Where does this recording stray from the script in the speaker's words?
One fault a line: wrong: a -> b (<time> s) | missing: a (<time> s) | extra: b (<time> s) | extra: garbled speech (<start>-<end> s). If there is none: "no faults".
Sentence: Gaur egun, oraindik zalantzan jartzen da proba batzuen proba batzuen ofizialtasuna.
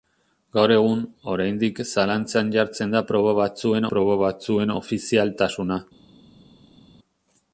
no faults